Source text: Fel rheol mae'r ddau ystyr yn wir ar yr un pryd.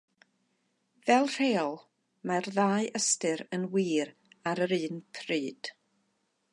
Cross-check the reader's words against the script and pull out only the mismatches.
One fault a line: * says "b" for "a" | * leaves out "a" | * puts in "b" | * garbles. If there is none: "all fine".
all fine